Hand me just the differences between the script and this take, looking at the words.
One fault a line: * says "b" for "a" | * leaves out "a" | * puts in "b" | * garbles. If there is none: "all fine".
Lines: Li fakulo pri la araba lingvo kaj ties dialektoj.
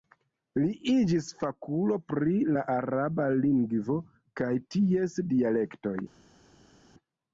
* puts in "iĝis"